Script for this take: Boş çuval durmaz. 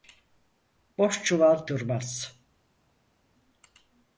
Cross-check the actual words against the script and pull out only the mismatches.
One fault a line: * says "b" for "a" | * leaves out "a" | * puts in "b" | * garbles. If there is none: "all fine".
all fine